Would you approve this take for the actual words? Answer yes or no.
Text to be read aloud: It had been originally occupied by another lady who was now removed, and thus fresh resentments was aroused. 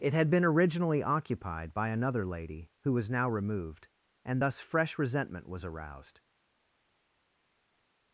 no